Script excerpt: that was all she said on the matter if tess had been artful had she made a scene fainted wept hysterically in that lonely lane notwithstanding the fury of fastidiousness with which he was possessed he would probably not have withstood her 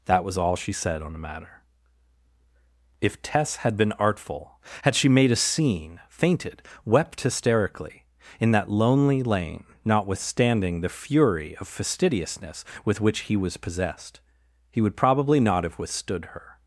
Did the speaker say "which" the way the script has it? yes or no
yes